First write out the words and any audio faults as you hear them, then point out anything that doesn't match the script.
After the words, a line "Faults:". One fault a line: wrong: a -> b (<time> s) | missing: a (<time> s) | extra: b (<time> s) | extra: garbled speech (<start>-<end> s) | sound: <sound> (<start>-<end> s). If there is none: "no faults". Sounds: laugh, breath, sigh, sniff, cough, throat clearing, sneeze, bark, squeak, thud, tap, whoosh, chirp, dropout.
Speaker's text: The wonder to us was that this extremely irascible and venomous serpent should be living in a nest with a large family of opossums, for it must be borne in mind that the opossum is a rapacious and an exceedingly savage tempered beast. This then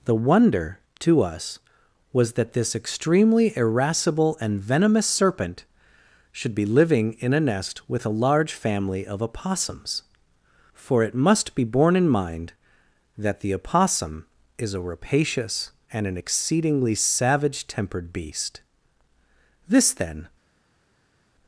The wonder to us was that this extremely irascible and venomous serpent should be living in a nest with a large family of opossums, for it must be borne in mind that the opossum is a rapacious and an exceedingly savage tempered beast. This then
Faults:
no faults